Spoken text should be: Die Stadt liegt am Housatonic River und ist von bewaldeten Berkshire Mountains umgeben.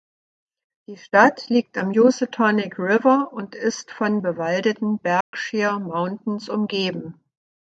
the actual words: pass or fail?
pass